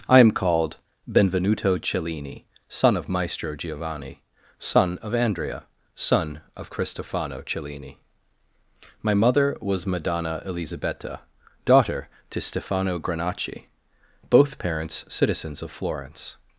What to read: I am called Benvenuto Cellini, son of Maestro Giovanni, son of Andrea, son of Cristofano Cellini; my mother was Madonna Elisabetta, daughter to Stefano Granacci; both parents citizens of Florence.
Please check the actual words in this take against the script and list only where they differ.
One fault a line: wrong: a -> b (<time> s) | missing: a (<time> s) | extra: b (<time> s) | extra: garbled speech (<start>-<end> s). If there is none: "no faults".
no faults